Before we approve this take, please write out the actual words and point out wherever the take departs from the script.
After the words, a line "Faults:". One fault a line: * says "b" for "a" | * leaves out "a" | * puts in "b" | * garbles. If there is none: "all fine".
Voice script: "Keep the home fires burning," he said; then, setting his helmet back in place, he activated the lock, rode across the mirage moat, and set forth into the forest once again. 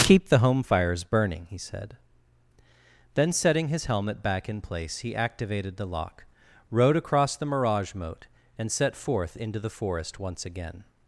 "Keep the home fires burning," he said; then, setting his helmet back in place, he activated the lock, rode across the mirage moat, and set forth into the forest once again.
Faults:
all fine